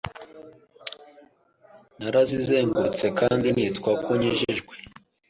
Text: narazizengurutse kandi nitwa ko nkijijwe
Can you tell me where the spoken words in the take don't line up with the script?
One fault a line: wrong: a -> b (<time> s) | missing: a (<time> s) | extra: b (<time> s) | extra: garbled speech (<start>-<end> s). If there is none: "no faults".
no faults